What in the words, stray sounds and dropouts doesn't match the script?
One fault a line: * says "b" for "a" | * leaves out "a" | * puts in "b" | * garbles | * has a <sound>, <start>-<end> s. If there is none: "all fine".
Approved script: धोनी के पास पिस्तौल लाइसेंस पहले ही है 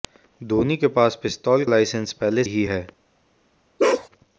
* has a bark, 3.8-4.1 s